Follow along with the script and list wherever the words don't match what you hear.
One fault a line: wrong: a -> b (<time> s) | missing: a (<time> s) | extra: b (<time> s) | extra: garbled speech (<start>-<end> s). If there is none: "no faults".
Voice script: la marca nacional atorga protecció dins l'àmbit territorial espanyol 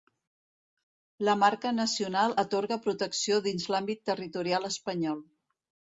no faults